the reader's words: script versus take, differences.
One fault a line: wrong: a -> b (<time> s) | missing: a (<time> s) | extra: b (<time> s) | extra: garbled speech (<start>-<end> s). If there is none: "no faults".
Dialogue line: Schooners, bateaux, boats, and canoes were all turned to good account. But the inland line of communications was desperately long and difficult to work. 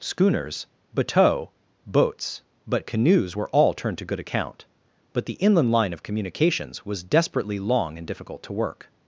wrong: and -> but (2.6 s)